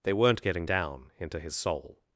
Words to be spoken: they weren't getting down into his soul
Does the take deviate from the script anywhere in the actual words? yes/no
no